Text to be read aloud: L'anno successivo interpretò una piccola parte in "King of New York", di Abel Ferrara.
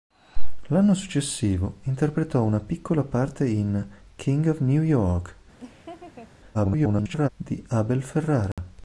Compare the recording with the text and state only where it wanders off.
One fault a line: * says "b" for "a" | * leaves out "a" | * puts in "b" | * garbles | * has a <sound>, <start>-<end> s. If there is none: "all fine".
* has a laugh, 5.6-6.3 s
* garbles
* has a dropout, 8.5-8.6 s